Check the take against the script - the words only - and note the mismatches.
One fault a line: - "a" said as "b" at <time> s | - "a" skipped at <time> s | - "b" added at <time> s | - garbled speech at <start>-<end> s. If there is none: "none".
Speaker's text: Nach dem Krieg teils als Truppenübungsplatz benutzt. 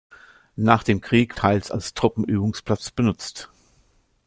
none